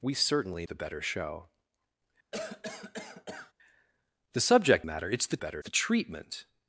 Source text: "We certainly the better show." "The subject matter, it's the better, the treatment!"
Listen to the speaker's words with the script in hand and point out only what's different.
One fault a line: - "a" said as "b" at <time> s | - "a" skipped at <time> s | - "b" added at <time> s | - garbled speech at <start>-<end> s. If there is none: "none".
none